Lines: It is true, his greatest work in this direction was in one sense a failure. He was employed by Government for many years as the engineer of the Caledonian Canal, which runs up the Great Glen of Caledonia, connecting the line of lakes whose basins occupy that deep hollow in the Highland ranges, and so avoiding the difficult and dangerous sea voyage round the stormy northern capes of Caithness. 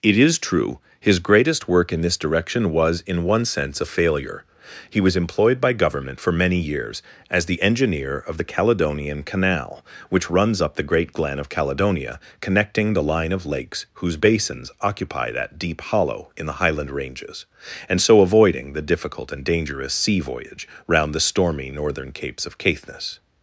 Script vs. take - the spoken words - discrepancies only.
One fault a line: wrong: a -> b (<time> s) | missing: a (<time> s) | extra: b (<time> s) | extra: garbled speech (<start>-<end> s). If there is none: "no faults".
no faults